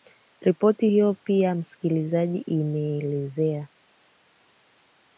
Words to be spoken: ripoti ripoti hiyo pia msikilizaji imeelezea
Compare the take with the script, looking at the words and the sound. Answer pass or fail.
fail